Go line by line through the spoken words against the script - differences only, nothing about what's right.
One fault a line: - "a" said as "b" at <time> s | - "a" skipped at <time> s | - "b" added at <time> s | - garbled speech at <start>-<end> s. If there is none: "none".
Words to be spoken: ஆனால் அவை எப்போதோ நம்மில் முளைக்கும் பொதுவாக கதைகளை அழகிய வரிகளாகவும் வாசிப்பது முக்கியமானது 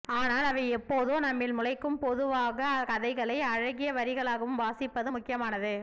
none